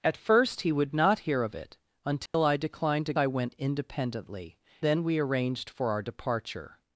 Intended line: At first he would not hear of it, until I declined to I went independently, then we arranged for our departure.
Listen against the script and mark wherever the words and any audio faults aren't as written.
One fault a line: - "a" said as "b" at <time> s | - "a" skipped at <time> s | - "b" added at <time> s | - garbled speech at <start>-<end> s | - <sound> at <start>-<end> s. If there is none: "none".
- dropout at 2.3-2.3 s